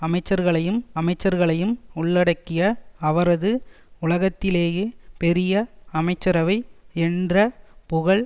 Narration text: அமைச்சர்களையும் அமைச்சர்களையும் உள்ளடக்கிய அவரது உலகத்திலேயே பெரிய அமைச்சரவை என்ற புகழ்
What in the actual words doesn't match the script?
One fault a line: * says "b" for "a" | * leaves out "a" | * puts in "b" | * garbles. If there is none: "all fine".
all fine